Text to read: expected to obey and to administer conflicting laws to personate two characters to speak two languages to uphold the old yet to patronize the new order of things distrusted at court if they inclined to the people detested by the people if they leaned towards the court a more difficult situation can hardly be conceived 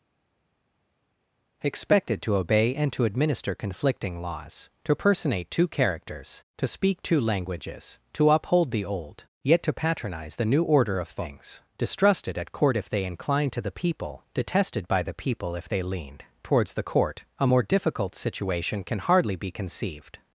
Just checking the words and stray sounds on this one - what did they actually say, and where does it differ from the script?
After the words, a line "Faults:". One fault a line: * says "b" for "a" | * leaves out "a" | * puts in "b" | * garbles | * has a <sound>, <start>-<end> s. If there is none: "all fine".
expected to obey and to administer conflicting laws to personate two characters to speak two languages to uphold the old yet to patronize the new order of things distrusted at court if they inclined to the people detested by the people if they leaned towards the court a more difficult situation can hardly be conceived
Faults:
all fine